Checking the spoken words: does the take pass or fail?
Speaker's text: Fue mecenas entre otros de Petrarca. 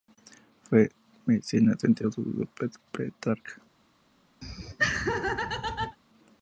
pass